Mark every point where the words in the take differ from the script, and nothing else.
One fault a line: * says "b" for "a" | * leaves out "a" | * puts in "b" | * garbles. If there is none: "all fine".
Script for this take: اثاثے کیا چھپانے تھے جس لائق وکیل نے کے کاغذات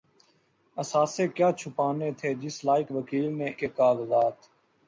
all fine